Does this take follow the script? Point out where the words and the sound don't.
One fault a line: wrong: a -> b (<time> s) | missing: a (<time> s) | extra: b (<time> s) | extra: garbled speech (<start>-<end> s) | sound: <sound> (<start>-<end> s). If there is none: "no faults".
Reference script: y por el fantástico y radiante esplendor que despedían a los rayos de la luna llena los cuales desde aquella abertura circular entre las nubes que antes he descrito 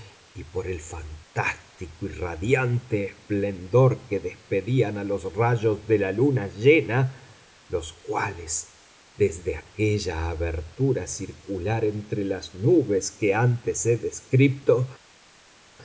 no faults